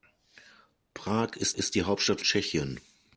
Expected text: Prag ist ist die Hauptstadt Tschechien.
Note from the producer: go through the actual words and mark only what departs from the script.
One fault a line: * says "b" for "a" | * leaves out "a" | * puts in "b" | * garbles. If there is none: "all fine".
all fine